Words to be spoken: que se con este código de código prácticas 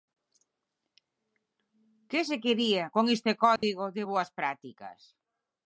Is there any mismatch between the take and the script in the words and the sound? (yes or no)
yes